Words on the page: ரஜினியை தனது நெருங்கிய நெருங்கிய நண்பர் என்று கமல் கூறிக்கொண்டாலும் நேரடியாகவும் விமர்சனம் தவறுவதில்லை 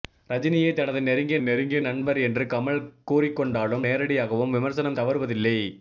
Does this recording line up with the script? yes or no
yes